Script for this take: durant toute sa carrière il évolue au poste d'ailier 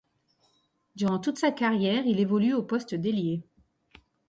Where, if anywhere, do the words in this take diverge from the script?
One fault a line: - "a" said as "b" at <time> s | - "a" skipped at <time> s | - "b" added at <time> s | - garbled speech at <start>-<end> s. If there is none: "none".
none